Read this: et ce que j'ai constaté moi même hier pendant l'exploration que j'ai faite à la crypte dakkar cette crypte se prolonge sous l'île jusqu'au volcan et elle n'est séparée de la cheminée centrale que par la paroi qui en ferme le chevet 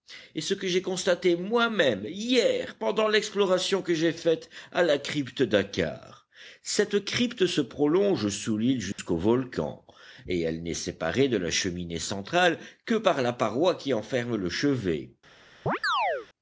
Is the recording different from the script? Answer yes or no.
no